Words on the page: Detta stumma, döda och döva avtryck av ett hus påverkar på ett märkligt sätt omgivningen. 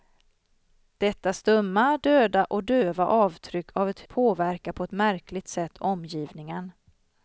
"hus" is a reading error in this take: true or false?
true